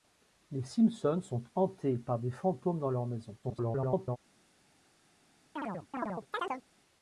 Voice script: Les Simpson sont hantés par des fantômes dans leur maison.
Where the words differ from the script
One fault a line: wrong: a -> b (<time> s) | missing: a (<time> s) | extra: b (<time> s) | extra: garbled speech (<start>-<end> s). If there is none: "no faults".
extra: garbled speech (3.4-4.2 s)